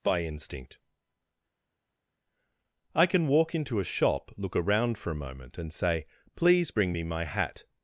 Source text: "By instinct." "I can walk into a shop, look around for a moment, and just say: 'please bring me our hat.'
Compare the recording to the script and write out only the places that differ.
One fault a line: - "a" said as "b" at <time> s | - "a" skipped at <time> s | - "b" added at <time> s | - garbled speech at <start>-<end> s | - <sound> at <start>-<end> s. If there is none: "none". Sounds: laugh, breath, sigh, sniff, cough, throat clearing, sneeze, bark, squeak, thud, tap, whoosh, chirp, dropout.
- "just" skipped at 5.7 s
- "our" said as "my" at 7.0 s